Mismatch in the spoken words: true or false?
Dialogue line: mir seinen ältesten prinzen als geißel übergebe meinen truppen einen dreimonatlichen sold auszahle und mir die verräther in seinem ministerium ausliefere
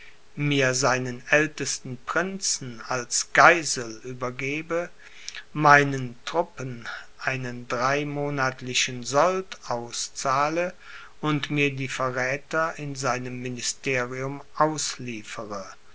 false